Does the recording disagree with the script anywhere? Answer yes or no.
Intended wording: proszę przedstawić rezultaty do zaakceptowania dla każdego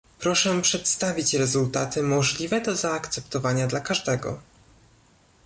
yes